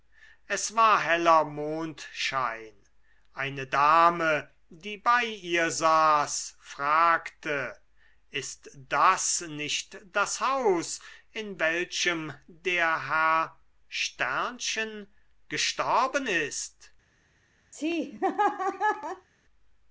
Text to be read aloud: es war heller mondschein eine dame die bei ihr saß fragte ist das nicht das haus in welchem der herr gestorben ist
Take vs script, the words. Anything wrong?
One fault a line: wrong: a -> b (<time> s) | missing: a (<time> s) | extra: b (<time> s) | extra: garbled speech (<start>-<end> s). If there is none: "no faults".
no faults